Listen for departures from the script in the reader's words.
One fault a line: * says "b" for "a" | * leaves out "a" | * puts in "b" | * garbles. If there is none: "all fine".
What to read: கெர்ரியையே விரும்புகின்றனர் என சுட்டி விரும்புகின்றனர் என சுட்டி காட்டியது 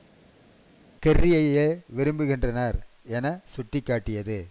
* leaves out "விரும்புகின்றனர் என சுட்டி"